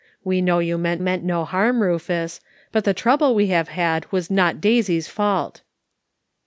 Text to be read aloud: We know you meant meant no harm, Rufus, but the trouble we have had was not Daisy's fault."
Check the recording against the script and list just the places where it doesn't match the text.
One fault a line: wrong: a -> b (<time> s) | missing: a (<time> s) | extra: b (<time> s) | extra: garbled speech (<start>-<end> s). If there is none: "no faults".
no faults